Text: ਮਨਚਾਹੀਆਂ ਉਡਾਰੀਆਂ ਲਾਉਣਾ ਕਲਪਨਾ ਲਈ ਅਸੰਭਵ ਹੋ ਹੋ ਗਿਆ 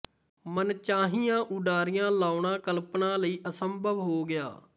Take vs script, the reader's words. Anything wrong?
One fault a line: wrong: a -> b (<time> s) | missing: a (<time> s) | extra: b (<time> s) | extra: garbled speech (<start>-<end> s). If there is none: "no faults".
missing: ਹੋ (4.2 s)